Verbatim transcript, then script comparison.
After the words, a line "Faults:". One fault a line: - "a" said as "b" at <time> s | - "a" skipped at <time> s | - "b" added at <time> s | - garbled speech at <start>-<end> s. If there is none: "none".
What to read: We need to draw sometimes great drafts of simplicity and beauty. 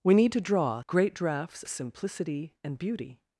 We need to draw great drafts simplicity and beauty.
Faults:
- "sometimes" skipped at 0.8 s
- "of" skipped at 1.6 s